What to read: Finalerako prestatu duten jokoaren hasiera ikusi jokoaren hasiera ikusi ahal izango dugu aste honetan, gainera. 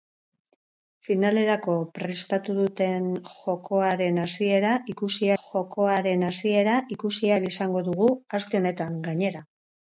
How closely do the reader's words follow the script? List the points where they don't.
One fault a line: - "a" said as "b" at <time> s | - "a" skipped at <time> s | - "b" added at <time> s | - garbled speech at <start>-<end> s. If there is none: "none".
none